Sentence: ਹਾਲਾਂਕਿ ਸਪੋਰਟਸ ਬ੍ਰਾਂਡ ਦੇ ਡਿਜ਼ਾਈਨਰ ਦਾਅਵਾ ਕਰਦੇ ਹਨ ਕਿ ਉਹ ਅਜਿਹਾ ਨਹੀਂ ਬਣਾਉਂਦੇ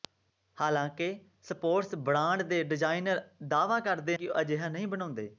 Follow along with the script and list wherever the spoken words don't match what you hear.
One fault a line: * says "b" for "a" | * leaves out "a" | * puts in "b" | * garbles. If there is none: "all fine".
* leaves out "ਹਨ"